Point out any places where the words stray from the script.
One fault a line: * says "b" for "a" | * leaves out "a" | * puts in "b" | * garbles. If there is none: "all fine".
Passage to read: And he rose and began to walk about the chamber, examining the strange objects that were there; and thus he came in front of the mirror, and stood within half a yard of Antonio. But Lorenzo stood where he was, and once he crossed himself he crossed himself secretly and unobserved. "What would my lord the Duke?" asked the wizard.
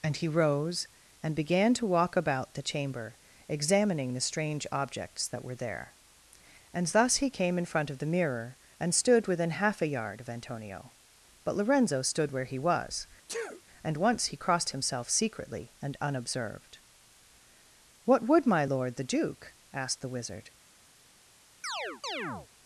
* leaves out "he crossed himself"